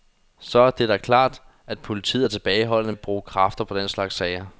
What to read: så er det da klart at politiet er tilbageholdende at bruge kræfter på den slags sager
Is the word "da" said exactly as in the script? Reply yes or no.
yes